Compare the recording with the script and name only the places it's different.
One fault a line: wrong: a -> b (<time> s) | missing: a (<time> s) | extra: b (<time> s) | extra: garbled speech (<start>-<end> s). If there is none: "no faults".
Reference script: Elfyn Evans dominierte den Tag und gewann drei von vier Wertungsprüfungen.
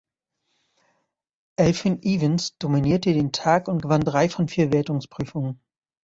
no faults